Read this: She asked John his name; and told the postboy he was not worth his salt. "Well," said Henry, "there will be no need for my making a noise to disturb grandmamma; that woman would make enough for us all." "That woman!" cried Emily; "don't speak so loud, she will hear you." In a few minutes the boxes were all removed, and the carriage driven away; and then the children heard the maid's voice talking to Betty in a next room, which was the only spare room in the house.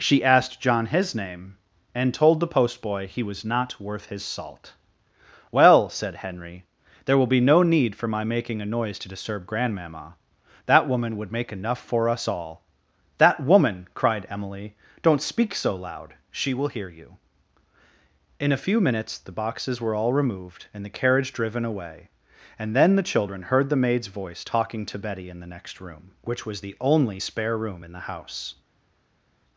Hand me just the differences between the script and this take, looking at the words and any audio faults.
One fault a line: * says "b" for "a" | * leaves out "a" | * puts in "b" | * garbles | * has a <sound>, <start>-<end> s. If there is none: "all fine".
* says "the" for "a"